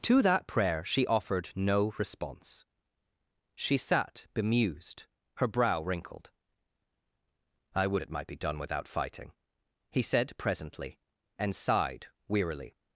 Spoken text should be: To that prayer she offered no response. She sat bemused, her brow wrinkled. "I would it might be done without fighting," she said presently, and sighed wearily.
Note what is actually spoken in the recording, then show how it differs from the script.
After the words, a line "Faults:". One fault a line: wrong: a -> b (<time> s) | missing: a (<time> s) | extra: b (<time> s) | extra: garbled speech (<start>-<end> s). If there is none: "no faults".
To that prayer she offered no response. She sat bemused, her brow wrinkled. "I would it might be done without fighting," he said presently, and sighed wearily.
Faults:
wrong: she -> he (9.9 s)